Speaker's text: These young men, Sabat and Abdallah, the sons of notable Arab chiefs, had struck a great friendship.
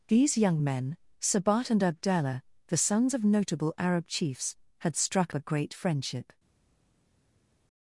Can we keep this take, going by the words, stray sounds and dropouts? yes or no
yes